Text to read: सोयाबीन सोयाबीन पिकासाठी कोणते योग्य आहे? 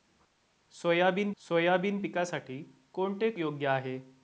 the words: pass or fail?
pass